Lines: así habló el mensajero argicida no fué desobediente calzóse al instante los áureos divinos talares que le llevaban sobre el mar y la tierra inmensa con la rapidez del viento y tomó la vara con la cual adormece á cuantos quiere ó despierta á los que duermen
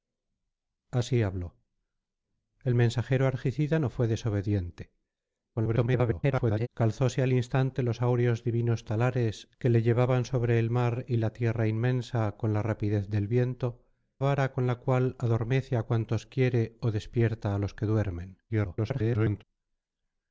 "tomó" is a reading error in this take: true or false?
true